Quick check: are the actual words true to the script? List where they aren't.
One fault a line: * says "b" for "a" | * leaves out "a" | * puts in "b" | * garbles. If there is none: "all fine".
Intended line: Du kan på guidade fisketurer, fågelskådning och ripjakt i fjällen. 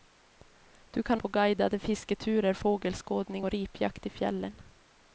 all fine